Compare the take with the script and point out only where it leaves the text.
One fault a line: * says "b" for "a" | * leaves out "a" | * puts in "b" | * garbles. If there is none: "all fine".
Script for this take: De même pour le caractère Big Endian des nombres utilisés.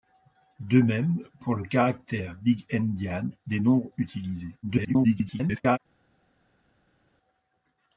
* garbles